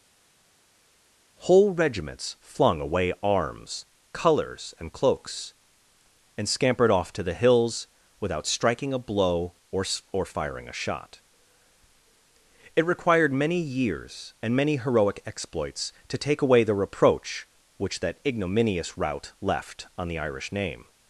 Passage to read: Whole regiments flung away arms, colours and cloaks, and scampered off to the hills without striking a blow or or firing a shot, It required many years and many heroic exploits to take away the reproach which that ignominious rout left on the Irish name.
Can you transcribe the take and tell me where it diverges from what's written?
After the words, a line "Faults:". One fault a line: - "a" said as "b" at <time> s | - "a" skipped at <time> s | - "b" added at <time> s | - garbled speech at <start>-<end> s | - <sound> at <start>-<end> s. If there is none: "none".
Whole regiments flung away arms, colours and cloaks, and scampered off to the hills without striking a blow or or firing a shot, It required many years and many heroic exploits to take away the reproach which that ignominious rout left on the Irish name.
Faults:
none